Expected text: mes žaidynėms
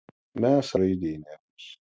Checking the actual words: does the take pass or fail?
pass